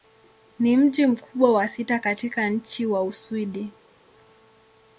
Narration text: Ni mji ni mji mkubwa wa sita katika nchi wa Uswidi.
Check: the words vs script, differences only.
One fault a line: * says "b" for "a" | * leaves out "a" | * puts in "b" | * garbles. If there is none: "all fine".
* leaves out "ni mji"